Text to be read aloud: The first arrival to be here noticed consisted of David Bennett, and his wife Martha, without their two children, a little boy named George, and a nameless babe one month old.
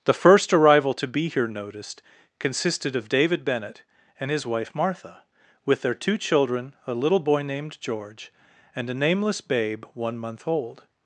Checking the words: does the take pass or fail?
fail